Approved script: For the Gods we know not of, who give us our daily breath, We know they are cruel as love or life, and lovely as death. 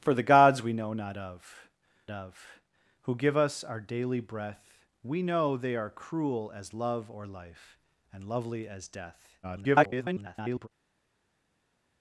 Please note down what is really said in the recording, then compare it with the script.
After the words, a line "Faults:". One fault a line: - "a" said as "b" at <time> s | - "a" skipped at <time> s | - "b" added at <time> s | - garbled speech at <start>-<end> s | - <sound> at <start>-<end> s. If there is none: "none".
For the Gods we know not of of, who give us our daily breath, We know they are cruel as love or life, and lovely as death. [garbled]
Faults:
- "of" added at 2.1 s
- garbled speech at 9.4-10.7 s